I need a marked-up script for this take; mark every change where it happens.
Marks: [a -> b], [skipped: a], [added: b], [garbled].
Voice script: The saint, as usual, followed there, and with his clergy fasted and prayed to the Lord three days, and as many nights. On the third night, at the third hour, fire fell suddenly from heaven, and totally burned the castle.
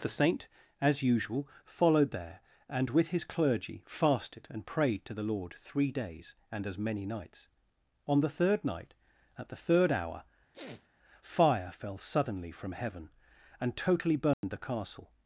The saint, as usual, followed there, and with his clergy fasted and prayed to the Lord three days, and as many nights. On the third night, at the third hour, fire fell suddenly from heaven, and totally burned the castle.